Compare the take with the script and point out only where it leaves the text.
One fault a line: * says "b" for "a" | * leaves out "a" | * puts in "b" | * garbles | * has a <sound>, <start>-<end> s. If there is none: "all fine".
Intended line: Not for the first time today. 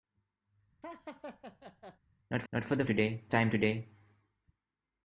* has a laugh, 0.8-2.0 s
* puts in "not"
* says "today" for "first"